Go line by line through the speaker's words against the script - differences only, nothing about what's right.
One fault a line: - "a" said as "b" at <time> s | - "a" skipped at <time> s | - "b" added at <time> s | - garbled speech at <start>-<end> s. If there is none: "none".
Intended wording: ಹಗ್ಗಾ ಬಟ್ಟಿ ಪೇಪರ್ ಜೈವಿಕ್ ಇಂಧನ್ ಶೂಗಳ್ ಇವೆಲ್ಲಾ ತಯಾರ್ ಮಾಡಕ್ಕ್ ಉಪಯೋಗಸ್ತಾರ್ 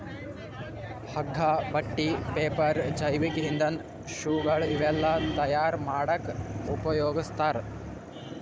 none